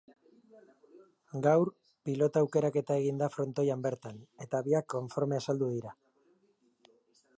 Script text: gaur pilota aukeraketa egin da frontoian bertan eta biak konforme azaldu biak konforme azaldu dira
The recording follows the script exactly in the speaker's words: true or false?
false